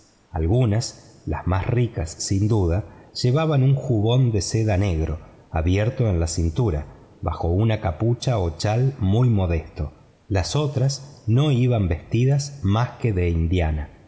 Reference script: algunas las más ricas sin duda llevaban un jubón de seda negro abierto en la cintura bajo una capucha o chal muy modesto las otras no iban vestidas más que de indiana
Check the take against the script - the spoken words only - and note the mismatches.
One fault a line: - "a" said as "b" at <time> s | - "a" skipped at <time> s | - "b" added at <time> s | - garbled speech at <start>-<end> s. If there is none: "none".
none